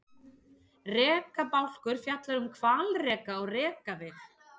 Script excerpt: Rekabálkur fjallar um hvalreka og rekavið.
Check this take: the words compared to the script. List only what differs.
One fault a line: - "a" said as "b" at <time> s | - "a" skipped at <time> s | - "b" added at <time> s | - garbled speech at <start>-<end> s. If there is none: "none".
none